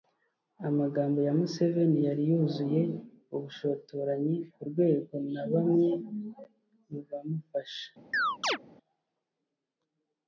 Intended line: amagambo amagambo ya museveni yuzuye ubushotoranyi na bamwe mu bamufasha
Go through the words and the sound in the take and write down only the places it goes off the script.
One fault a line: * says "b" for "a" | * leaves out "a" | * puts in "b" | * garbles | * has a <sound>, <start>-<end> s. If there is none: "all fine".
* leaves out "amagambo"
* puts in "yari"
* puts in "ku rwego"
* has a chirp, 8.1-8.6 s